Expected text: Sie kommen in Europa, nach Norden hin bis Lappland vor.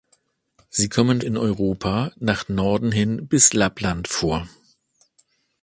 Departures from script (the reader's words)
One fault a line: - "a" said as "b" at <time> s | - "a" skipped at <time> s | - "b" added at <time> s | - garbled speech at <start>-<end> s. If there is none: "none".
none